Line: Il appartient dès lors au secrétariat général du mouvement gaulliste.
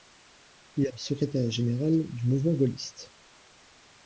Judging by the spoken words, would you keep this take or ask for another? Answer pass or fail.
fail